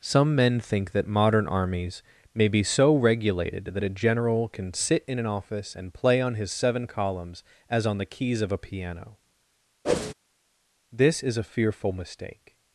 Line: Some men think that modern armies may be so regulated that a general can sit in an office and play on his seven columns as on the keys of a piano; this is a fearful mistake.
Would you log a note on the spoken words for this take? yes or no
no